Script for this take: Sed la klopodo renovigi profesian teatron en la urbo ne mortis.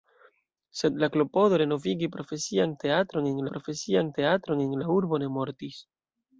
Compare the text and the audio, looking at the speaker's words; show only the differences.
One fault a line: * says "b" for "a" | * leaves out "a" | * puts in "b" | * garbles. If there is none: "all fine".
* puts in "profesian teatron en"